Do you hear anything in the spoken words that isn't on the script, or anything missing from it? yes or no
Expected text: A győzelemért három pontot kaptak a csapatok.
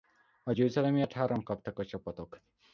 yes